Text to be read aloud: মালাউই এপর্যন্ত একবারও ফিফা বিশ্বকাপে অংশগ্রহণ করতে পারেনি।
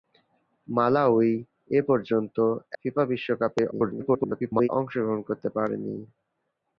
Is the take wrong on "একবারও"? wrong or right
wrong